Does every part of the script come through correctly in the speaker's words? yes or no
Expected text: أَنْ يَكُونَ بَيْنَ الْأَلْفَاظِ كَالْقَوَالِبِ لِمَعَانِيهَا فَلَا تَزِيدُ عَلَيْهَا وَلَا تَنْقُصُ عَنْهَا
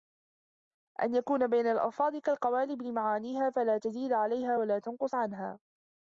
yes